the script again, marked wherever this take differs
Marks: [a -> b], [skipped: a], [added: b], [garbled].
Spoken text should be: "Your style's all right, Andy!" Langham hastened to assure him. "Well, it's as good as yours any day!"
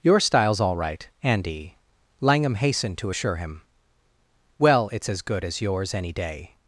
"Your style's all right, Andy!" Langham hastened to assure him. "Well, it's as good as yours any day!"